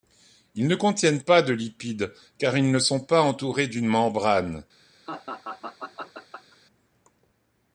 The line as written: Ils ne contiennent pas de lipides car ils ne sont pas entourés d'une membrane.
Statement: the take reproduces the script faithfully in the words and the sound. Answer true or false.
false